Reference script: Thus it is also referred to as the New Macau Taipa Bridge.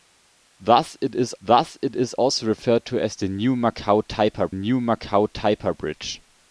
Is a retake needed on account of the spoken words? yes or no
yes